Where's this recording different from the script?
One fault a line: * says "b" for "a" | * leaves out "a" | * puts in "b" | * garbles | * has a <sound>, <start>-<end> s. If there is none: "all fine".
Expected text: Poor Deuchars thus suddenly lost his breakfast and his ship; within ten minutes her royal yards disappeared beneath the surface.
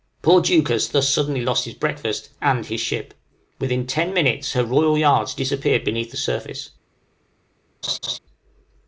* has a laugh, 7.8-8.2 s